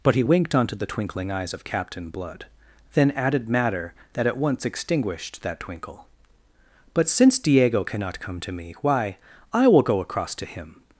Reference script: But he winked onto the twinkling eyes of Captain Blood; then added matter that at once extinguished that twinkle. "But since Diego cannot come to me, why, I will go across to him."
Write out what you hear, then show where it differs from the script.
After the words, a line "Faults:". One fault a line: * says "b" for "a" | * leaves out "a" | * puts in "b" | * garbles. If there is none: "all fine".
But he winked onto the twinkling eyes of Captain Blood; then added matter that at once extinguished that twinkle. "But since Diego cannot come to me, why, I will go across to him."
Faults:
all fine